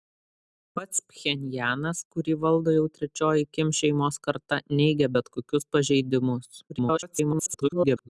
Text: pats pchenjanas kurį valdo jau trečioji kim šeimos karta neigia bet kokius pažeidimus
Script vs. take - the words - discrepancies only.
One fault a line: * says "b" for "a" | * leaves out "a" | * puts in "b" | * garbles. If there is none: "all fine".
* garbles